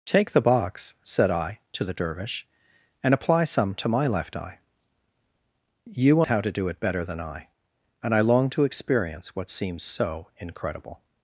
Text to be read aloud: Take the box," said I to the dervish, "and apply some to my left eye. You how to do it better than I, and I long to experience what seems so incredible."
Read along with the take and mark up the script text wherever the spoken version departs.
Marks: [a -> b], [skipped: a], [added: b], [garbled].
Take the box," said I to the dervish, "and apply some to my left eye. You how to do it better than I, and I long to experience what seems so incredible."